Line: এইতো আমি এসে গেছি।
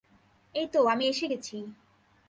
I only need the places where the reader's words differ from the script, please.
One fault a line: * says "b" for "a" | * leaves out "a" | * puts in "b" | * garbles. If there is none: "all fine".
all fine